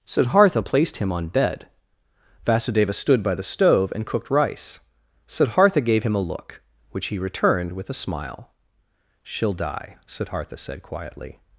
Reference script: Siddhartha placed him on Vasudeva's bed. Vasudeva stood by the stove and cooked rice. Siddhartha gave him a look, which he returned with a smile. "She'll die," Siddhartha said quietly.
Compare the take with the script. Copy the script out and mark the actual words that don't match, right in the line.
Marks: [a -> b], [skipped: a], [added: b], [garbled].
Siddhartha placed him on [skipped: Vasudeva's] bed. Vasudeva stood by the stove and cooked rice. Siddhartha gave him a look, which he returned with a smile. "She'll die," Siddhartha said quietly.